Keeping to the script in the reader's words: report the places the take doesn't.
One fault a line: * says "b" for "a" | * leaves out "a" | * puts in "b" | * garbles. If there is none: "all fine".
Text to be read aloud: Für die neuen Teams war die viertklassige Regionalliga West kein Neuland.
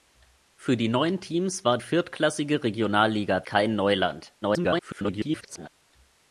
* leaves out "die"
* leaves out "West"
* garbles